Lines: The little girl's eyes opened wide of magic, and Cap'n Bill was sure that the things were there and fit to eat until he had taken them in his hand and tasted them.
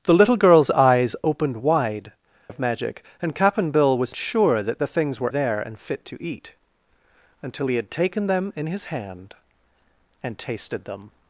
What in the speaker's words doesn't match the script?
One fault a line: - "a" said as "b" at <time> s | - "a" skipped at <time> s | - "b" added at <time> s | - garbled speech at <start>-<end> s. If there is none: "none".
none